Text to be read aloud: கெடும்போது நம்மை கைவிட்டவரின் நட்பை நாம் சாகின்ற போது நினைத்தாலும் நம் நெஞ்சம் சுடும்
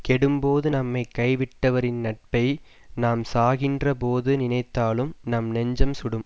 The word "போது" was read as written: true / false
true